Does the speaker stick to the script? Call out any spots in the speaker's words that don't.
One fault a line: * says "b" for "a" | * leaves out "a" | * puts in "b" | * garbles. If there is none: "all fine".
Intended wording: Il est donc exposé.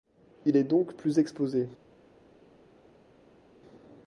* puts in "plus"